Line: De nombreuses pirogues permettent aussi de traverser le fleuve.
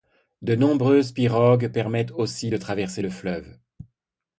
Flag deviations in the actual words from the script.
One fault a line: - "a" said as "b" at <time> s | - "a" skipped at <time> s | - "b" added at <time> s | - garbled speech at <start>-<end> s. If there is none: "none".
none